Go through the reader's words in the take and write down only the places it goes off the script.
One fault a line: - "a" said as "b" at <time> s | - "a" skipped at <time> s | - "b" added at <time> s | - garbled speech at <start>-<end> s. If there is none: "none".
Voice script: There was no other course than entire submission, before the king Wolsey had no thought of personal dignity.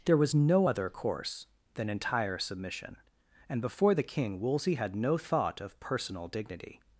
- "and" added at 3.5 s